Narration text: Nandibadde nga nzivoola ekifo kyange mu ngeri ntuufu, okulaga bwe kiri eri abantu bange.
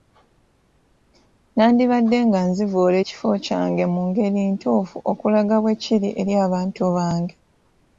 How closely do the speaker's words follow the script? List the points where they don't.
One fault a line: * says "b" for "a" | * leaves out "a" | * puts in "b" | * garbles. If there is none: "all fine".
all fine